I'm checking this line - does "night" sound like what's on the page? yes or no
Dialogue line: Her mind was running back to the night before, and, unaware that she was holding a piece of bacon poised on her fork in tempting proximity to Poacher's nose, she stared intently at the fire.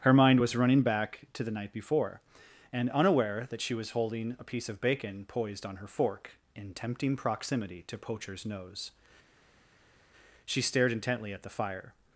yes